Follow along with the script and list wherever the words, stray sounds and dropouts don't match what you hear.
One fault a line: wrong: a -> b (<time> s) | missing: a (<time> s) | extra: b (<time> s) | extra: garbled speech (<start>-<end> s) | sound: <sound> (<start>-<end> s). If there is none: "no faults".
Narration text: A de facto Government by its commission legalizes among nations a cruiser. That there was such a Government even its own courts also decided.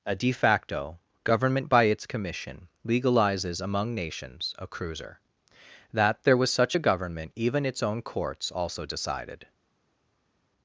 no faults